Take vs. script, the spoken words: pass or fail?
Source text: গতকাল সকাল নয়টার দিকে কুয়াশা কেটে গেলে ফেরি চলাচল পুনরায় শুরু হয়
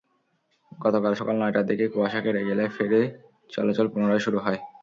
pass